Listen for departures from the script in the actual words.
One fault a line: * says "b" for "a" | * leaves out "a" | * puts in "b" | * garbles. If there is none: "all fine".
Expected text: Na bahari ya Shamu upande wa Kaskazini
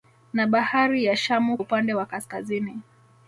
all fine